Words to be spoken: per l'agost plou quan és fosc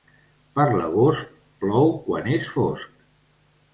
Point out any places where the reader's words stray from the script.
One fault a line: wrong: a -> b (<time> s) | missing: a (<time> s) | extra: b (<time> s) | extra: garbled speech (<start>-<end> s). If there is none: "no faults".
no faults